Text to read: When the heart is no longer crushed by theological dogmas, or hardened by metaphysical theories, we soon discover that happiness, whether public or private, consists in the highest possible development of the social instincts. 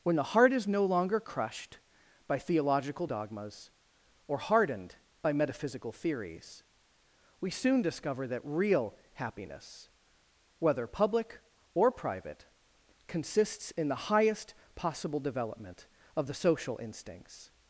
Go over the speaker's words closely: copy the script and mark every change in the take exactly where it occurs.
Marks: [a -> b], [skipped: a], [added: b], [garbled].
When the heart is no longer crushed by theological dogmas, or hardened by metaphysical theories, we soon discover that [added: real] happiness, whether public or private, consists in the highest possible development of the social instincts.